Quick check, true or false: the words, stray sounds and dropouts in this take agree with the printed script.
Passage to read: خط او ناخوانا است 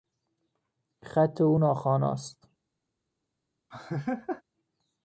false